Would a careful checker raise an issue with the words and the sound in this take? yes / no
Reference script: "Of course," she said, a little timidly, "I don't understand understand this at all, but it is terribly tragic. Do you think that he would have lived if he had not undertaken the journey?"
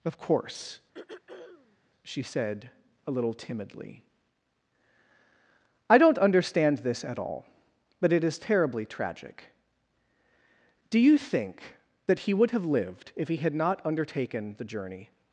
yes